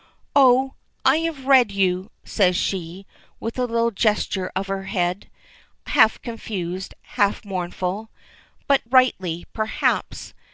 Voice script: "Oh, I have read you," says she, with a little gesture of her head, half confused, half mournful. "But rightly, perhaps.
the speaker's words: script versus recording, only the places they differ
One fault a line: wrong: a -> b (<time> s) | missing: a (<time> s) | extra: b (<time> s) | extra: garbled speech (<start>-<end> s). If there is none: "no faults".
no faults